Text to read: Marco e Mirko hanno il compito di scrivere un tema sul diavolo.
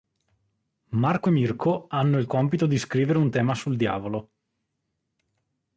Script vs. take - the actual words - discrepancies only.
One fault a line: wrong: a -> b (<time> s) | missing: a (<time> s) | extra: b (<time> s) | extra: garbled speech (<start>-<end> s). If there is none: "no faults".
no faults